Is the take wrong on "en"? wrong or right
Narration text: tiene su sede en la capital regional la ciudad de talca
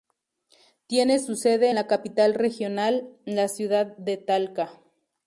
wrong